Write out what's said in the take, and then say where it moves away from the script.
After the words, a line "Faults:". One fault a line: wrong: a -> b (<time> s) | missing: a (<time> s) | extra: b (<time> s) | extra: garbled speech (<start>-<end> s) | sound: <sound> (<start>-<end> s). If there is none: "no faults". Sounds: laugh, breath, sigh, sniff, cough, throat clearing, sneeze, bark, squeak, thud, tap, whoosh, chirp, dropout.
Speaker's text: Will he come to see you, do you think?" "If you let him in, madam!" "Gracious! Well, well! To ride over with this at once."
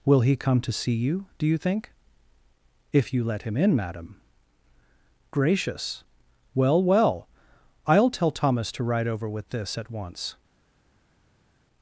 Will he come to see you, do you think?" "If you let him in, madam!" "Gracious! Well, well! I'll tell Thomas to ride over with this at once."
Faults:
extra: I'll tell Thomas (7.9 s)